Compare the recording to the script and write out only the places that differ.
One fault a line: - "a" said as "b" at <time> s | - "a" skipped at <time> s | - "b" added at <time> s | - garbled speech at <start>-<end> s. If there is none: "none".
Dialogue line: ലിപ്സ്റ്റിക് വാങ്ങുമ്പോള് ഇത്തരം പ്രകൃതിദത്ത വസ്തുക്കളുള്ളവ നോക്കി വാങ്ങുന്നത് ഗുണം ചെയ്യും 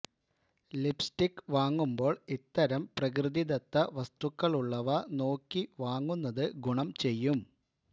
none